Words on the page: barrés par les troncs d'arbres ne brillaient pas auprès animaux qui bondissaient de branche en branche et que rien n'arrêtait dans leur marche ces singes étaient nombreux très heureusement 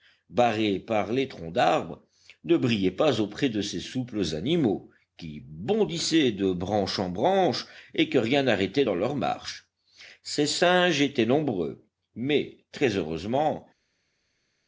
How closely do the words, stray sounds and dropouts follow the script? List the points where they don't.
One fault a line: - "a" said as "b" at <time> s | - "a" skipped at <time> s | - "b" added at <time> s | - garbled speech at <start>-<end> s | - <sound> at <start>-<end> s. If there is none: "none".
- "de ces souples" added at 3.5 s
- "mais" added at 12.1 s